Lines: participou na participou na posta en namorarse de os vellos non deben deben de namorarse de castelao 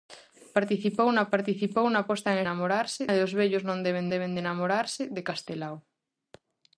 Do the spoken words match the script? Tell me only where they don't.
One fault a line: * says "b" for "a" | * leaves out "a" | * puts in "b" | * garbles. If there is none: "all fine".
all fine